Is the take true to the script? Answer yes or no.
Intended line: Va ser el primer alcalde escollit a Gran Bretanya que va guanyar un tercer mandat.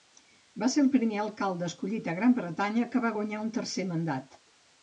yes